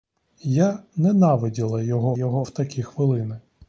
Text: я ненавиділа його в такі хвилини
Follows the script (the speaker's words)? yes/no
no